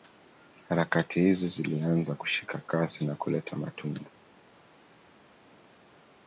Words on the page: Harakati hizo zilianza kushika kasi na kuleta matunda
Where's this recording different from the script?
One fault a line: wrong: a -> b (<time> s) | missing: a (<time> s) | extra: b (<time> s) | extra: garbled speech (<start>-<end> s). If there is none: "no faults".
no faults